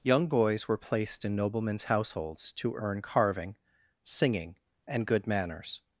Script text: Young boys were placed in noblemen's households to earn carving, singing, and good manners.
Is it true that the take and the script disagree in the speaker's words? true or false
false